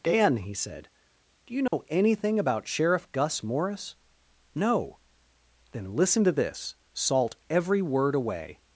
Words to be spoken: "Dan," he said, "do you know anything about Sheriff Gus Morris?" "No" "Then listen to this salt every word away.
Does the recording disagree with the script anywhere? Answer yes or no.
no